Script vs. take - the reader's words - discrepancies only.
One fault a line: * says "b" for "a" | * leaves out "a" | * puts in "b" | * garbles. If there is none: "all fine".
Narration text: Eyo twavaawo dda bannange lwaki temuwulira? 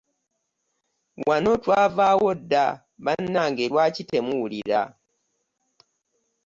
* says "Wano" for "Eyo"